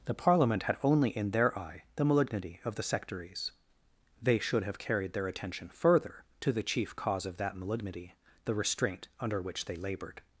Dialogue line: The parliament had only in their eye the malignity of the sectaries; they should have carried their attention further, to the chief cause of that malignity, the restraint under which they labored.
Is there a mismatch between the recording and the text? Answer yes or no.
no